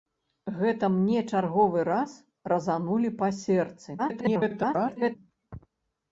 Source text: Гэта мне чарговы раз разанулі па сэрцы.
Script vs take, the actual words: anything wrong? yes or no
yes